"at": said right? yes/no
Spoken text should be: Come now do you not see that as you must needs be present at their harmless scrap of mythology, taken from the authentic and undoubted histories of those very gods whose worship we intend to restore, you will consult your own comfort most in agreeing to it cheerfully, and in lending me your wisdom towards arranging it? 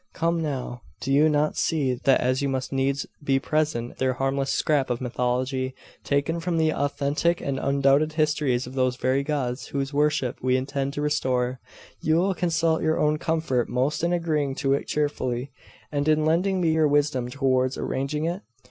no